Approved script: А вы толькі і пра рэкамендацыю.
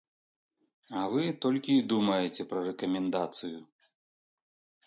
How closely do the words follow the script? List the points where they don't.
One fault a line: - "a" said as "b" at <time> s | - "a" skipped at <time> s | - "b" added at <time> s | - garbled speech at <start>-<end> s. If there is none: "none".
- "думаеце" added at 1.9 s